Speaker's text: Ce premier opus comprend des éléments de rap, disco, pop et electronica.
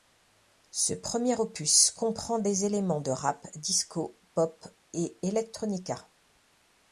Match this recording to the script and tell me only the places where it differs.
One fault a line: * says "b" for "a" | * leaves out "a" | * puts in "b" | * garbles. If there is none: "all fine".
all fine